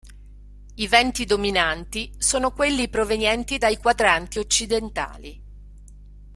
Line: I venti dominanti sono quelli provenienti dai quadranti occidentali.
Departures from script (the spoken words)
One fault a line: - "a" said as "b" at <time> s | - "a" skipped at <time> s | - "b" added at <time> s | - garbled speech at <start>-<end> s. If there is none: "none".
none